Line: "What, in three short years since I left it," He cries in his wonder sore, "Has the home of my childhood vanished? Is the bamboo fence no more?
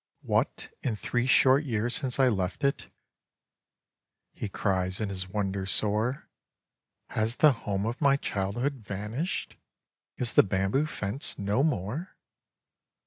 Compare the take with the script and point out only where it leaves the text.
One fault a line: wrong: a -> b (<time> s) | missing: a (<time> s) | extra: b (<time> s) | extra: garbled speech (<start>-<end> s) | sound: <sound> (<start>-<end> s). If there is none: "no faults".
no faults